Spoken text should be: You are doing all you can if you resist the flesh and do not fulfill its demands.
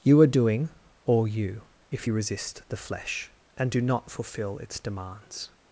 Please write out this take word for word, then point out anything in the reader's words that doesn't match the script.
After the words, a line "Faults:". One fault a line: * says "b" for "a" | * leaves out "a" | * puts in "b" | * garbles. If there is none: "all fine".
You are doing all you if you resist the flesh and do not fulfill its demands.
Faults:
* leaves out "can"